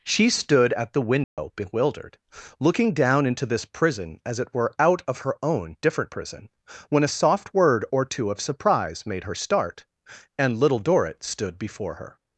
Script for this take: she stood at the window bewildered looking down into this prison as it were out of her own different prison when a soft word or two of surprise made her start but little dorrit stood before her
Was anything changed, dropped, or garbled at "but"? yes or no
yes